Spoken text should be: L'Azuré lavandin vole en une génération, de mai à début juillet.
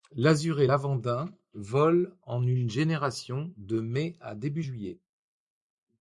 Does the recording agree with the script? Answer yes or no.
yes